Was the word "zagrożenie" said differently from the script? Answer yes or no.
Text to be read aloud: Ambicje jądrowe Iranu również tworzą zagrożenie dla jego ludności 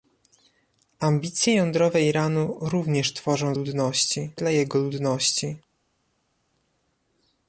yes